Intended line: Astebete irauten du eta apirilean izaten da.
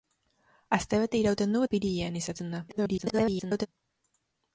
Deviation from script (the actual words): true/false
true